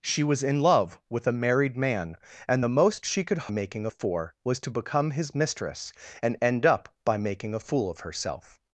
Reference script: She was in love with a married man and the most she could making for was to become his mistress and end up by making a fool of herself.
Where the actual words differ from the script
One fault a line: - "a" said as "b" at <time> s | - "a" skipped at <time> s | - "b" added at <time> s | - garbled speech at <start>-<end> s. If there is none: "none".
none